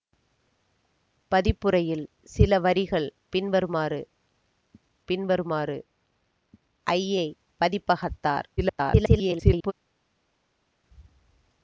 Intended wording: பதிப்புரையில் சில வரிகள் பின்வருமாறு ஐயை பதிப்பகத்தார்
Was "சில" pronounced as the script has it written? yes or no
yes